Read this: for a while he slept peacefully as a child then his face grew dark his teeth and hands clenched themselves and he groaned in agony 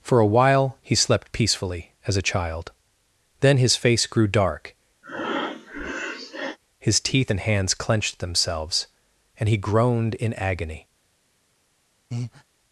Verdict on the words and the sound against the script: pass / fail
fail